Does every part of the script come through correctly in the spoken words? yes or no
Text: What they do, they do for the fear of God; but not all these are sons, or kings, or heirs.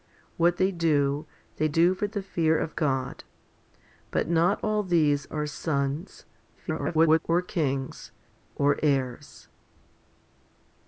no